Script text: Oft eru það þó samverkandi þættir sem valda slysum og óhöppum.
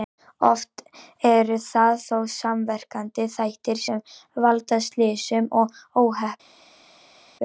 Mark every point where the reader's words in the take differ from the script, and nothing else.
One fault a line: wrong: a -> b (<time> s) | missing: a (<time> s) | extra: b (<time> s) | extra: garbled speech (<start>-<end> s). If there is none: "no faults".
no faults